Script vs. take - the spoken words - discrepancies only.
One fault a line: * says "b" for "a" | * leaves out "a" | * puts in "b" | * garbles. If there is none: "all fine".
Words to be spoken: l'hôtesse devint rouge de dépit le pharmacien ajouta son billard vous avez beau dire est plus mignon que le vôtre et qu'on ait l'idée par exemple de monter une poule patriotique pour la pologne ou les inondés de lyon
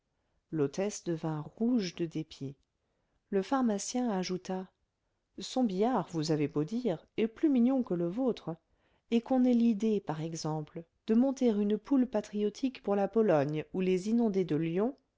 all fine